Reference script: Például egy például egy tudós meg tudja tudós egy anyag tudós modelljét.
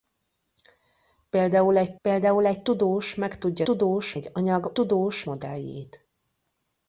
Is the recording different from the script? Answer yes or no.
no